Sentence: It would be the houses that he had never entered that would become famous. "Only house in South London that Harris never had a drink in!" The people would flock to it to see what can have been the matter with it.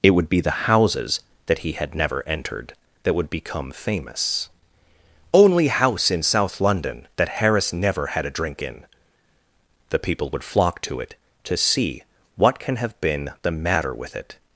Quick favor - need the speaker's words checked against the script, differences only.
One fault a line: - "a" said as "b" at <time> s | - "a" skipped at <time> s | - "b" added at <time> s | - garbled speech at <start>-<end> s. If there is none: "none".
none